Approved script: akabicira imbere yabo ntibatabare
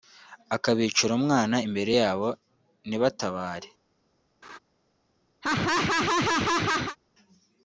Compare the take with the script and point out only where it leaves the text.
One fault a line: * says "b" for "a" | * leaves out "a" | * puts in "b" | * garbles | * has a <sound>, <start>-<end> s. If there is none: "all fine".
* puts in "umwana"
* has a laugh, 4.4-4.6 s
* has a laugh, 5.4-7.0 s